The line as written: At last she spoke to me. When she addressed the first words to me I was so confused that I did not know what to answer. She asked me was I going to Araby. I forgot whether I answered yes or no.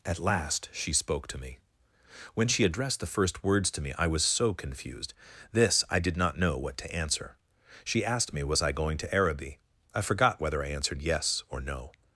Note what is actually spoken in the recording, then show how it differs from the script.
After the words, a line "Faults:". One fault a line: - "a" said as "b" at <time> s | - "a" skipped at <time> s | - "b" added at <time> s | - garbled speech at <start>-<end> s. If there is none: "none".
At last she spoke to me. When she addressed the first words to me I was so confused this I did not know what to answer. She asked me was I going to Araby. I forgot whether I answered yes or no.
Faults:
- "that" said as "this" at 5.5 s